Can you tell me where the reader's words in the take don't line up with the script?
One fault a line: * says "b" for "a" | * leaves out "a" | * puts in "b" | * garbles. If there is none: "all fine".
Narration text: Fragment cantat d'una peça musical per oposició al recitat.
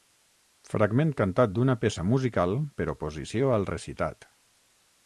all fine